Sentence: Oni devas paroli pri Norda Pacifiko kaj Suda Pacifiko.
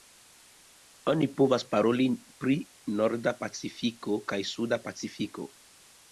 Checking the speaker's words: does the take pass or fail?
fail